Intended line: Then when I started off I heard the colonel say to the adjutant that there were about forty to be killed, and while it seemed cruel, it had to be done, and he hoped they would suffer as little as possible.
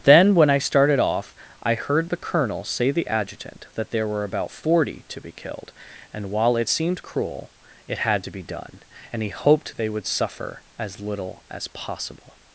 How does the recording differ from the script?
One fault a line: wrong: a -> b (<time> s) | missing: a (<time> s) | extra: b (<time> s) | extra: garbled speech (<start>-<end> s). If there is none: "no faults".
missing: to (2.9 s)